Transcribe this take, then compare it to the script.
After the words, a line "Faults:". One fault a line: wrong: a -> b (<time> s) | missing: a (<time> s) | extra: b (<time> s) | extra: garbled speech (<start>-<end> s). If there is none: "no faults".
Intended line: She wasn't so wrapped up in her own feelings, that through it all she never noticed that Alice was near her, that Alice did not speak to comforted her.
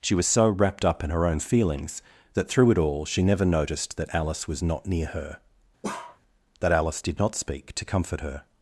She was so wrapped up in her own feelings, that through it all she never noticed that Alice was not near her, that Alice did not speak to comfort her.
Faults:
wrong: wasn't -> was (0.1 s)
extra: not (4.6 s)
wrong: comforted -> comfort (7.8 s)